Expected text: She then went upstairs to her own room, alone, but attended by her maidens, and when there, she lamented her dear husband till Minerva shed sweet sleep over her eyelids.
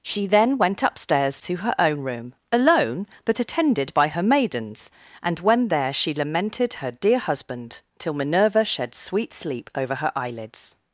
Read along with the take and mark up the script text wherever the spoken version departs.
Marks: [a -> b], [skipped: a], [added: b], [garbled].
She then went upstairs to her own room, alone, but attended by her maidens, and when there, she lamented her dear husband till Minerva shed sweet sleep over her eyelids.